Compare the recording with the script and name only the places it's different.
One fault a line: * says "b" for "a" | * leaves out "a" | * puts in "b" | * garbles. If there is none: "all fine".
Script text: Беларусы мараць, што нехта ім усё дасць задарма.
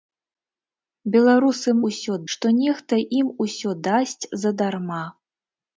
* says "усё" for "мараць"